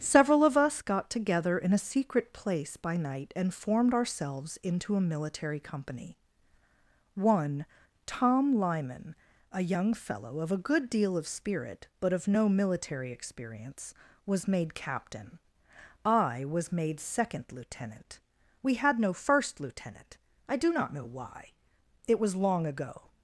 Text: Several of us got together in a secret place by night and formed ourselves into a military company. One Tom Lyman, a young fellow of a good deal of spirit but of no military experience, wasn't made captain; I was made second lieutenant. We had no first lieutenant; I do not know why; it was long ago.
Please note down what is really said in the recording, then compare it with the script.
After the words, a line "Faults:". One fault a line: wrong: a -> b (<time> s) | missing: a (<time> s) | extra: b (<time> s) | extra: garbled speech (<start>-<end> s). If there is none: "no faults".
Several of us got together in a secret place by night and formed ourselves into a military company. One Tom Lyman, a young fellow of a good deal of spirit but of no military experience, was made captain; I was made second lieutenant. We had no first lieutenant; I do not know why; it was long ago.
Faults:
wrong: wasn't -> was (14.2 s)